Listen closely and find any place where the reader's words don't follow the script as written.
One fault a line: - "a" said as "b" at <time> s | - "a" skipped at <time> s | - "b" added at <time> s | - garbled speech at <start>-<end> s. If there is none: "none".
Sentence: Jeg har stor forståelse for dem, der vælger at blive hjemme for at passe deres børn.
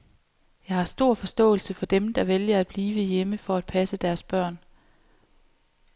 none